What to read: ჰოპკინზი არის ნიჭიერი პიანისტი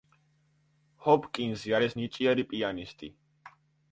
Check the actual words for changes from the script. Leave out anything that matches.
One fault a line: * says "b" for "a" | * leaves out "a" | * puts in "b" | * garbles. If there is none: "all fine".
all fine